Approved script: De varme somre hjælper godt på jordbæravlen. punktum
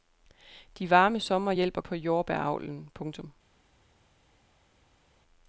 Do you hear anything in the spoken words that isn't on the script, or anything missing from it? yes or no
yes